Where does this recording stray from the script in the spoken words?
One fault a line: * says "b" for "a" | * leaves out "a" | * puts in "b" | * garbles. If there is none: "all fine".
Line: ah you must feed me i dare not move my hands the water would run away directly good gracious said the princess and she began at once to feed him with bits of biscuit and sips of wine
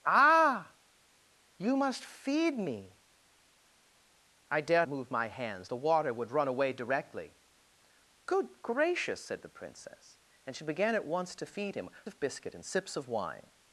* leaves out "not"
* leaves out "with bits"